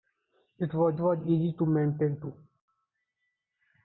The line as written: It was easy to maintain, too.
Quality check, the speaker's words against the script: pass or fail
fail